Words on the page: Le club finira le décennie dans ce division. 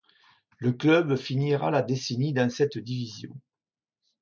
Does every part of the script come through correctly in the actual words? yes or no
no